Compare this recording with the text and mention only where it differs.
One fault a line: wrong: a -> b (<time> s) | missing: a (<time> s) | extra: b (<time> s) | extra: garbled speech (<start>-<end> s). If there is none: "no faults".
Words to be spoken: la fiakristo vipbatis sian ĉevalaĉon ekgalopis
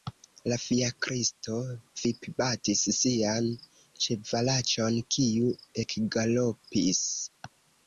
extra: kiu (5.2 s)